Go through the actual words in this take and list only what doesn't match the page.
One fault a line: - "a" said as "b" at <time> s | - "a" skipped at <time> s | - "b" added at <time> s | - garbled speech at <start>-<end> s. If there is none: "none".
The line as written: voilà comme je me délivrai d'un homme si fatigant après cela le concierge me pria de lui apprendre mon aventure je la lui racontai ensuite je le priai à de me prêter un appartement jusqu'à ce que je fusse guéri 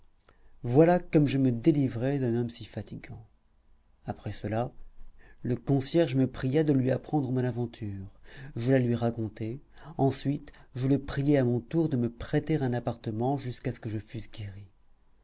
- "mon tour" added at 11.4 s